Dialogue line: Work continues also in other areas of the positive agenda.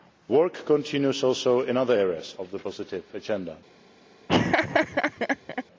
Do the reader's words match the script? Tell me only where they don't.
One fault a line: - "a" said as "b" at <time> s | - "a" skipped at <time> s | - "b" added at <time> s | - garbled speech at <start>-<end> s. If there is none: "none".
none